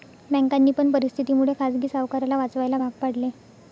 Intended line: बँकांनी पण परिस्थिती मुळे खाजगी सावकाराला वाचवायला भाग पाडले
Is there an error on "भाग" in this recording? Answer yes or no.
no